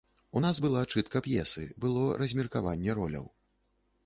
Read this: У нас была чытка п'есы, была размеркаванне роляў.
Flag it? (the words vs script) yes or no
yes